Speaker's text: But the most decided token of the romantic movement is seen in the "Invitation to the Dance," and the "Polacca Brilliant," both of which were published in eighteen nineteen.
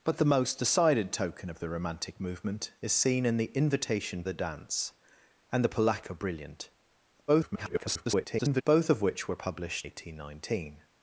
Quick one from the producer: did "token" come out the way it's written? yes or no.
yes